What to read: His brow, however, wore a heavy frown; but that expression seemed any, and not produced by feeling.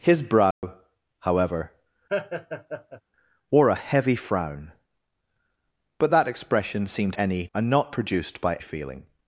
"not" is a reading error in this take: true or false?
false